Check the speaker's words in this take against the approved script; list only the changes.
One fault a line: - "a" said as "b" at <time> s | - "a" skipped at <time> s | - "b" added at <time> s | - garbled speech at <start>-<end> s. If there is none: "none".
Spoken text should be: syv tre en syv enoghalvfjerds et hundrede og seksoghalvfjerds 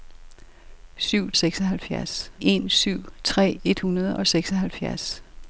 - "tre" said as "seksoghalvfjerds" at 1.3 s
- "enoghalvfjerds" said as "tre" at 3.2 s